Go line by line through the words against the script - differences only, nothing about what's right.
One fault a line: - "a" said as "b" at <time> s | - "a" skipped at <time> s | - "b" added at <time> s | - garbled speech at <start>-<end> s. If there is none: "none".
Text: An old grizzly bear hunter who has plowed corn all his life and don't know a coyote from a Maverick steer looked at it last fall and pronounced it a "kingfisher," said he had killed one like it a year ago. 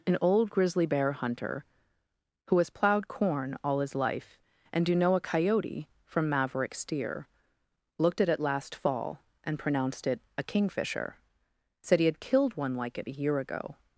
- "don't" said as "do" at 4.8 s
- "a" skipped at 6.3 s